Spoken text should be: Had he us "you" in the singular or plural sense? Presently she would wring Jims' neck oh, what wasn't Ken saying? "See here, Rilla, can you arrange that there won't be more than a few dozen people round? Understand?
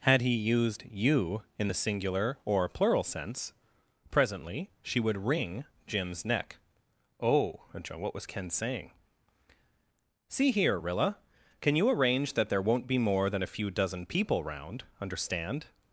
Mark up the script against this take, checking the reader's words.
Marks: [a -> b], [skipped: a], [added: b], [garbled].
Had he [us -> used] "you" in the singular or plural sense? Presently she would wring Jims' neck oh, what [wasn't -> was] Ken saying? "See here, Rilla, can you arrange that there won't be more than a few dozen people round? Understand?